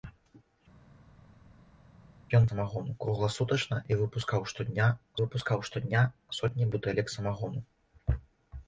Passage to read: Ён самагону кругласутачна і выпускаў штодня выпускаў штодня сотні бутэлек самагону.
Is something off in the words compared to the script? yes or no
no